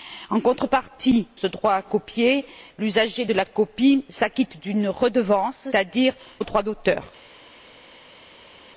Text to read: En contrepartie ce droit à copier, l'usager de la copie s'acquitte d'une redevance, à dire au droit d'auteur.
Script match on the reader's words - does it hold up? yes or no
yes